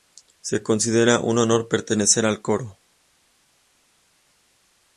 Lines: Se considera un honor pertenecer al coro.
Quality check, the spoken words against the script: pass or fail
pass